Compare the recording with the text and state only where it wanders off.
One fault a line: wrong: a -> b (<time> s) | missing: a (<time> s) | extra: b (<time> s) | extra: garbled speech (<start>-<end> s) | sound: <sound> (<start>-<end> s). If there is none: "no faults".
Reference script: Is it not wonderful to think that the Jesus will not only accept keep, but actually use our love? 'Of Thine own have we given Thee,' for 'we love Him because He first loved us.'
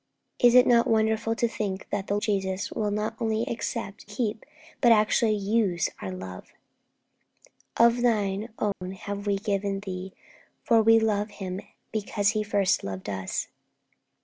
sound: dropout (8.7-8.8 s)